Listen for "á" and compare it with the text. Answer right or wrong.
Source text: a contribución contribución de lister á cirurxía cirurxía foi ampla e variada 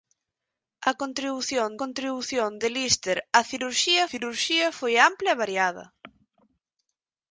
right